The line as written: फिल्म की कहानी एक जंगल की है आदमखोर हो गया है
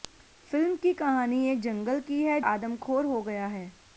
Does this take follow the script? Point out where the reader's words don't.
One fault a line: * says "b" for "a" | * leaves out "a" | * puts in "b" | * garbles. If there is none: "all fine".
all fine